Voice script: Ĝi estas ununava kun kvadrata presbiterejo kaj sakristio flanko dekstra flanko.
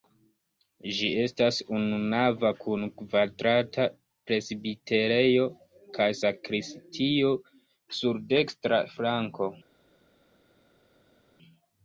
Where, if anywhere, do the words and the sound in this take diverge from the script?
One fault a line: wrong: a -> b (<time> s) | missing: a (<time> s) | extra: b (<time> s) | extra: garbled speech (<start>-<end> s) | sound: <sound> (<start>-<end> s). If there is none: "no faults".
wrong: flanko -> sur (8.0 s)